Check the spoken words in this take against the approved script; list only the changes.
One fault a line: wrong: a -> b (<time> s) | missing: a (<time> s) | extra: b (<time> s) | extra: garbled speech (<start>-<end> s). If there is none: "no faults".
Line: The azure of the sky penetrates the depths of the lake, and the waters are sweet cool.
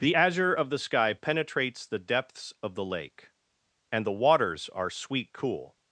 no faults